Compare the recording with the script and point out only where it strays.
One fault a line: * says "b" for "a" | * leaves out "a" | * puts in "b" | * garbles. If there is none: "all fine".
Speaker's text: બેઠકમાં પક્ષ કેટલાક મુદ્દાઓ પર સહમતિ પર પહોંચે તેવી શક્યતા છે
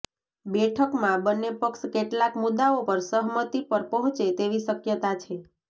* puts in "બંને"